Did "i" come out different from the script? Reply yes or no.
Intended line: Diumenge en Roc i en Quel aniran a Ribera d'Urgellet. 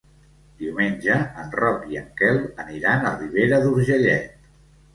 no